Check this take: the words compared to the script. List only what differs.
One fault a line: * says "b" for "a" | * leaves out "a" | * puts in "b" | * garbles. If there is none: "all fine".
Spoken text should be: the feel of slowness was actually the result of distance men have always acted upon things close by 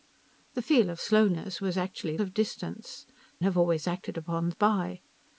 * leaves out "the result"
* leaves out "men"
* leaves out "things close"